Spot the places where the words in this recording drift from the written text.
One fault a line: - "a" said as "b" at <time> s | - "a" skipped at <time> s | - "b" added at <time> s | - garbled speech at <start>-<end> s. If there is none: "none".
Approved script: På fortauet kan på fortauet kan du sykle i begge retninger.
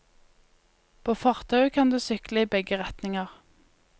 - "på fortauet kan" skipped at 1.9 s